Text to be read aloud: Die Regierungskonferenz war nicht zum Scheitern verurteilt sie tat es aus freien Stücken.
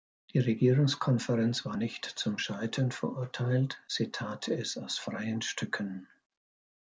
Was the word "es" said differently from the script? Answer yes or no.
no